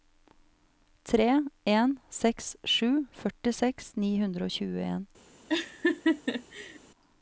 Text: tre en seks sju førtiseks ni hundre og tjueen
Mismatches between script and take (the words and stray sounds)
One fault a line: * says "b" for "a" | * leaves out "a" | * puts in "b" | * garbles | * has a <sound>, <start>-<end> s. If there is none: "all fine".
* has a laugh, 5.5-6.8 s